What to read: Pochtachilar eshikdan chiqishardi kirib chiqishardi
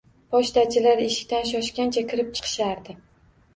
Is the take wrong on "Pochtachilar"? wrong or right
right